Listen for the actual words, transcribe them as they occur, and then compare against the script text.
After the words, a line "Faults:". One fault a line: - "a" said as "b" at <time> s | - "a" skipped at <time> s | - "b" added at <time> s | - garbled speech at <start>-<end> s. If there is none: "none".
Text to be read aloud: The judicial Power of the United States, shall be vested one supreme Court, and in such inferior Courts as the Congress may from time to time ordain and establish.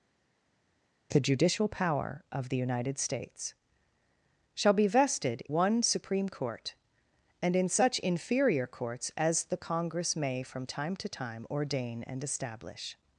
The judicial Power of the United States, shall be vested one supreme Court, and in such inferior Courts as the Congress may from time to time ordain and establish.
Faults:
none